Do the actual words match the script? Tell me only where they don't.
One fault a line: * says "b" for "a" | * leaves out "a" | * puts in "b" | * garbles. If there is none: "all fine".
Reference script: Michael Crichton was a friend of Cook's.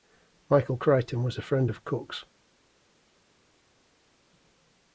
all fine